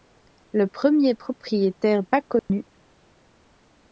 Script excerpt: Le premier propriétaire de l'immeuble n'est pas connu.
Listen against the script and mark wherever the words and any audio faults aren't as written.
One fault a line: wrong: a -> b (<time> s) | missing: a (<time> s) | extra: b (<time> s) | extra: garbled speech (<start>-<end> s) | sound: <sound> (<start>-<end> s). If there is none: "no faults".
missing: de l'immeuble n'est (2.0 s)
sound: dropout (2.4-2.5 s)